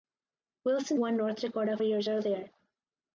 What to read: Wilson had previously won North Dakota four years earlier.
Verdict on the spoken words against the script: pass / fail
fail